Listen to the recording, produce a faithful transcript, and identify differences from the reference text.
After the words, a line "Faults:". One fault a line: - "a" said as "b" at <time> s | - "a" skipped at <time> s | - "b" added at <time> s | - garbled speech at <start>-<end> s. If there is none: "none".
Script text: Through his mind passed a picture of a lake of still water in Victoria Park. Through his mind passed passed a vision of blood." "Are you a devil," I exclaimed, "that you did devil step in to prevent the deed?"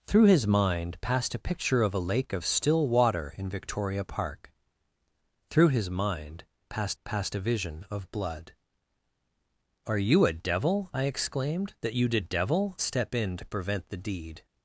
Through his mind passed a picture of a lake of still water in Victoria Park. Through his mind passed passed a vision of blood." "Are you a devil," I exclaimed, "that you did devil step in to prevent the deed?"
Faults:
none